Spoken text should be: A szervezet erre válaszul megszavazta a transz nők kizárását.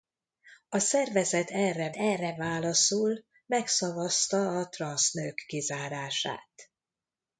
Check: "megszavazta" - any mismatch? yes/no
no